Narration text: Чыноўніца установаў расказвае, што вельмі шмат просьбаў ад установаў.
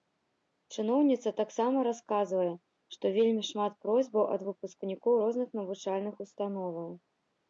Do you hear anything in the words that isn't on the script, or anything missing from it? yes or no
yes